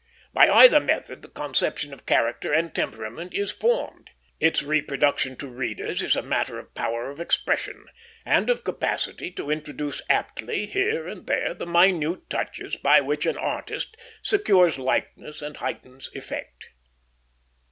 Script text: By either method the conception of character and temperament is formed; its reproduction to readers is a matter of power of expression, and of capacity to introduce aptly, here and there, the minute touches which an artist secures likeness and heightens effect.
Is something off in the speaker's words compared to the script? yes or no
yes